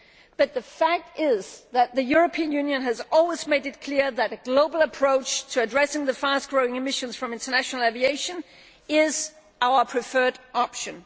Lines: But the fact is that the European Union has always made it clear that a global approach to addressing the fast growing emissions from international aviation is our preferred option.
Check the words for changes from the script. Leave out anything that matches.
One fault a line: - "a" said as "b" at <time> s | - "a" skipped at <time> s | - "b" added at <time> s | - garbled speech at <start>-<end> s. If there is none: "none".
none